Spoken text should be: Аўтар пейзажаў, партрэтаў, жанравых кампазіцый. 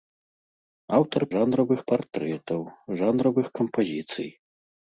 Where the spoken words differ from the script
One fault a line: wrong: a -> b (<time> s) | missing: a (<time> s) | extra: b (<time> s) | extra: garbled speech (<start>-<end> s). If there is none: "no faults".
wrong: пейзажаў -> жанравых (1.3 s)